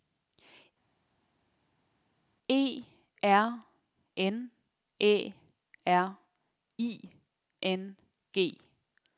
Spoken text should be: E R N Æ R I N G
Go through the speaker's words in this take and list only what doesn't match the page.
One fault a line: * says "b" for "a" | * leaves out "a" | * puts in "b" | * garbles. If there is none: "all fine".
all fine